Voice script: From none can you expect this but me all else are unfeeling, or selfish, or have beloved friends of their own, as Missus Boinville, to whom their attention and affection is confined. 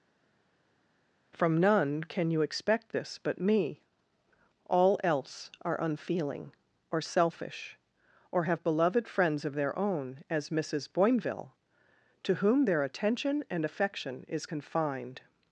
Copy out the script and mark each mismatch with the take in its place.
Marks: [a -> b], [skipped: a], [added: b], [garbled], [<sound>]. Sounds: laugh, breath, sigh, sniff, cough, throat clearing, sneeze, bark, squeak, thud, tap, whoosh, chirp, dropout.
From none can you expect this but me all else are unfeeling, or selfish, or have beloved friends of their own, as Missus Boinville, to whom their attention and affection is confined.